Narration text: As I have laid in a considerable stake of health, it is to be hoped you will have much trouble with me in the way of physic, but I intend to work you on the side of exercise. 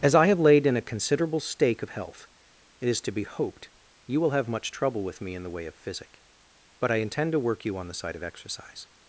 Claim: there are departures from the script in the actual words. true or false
false